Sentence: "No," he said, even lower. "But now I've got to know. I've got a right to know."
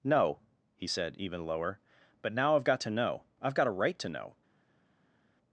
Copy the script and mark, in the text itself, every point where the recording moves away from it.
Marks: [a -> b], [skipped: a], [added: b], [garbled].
"No," he said, even lower. "But now I've got to know. I've got a right to know."